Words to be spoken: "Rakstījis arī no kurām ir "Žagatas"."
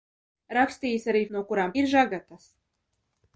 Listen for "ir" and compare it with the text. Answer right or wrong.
right